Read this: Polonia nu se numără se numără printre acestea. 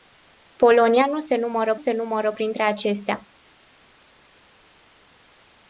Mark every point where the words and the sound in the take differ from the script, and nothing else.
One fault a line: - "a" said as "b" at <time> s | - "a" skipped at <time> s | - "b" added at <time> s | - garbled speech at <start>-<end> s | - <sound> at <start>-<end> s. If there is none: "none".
none